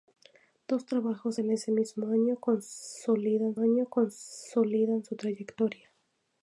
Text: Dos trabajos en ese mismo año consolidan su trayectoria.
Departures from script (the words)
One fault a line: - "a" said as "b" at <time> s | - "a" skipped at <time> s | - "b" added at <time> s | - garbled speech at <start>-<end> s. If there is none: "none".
- "año consolidan" added at 3.6 s